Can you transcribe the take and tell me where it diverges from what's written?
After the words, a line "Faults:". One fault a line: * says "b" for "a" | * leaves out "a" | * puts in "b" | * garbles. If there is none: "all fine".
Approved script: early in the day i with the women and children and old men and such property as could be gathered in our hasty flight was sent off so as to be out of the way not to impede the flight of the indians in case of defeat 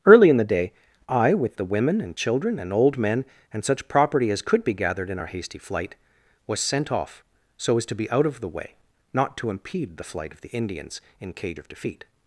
early in the day i with the women and children and old men and such property as could be gathered in our hasty flight was sent off so as to be out of the way not to impede the flight of the indians in cage of defeat
Faults:
* says "cage" for "case"